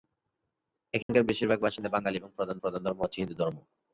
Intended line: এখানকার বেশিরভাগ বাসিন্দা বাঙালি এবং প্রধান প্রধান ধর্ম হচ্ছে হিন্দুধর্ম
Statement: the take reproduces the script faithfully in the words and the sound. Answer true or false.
false